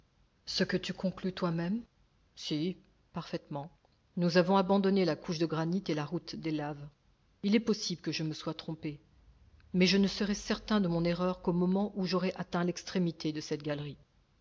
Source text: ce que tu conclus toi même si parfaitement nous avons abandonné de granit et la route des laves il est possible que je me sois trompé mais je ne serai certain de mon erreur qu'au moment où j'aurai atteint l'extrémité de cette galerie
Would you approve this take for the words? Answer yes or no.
no